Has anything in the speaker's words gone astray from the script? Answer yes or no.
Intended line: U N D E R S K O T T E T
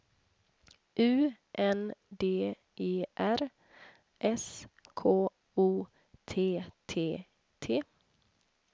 yes